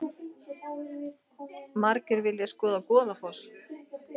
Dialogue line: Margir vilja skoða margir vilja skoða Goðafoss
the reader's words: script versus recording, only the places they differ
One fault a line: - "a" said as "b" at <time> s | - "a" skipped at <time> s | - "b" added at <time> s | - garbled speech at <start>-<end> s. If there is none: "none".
- "margir vilja skoða" skipped at 2.8 s